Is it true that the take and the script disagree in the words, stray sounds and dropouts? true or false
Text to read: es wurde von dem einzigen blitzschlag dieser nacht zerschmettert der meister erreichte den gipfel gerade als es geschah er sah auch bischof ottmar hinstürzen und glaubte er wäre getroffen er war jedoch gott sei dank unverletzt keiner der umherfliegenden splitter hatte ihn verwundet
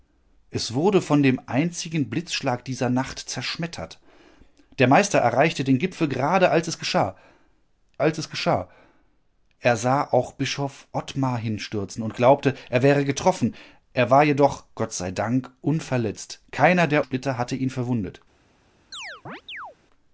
true